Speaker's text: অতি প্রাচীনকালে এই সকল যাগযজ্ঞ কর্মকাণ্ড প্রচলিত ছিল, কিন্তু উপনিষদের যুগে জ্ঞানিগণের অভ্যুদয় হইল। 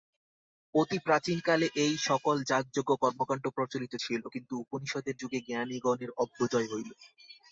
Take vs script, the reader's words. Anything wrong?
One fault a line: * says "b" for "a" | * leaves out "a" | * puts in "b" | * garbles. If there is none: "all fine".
all fine